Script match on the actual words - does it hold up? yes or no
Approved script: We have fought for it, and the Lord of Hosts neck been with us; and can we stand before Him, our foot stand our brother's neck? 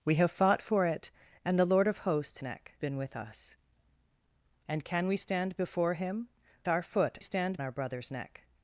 yes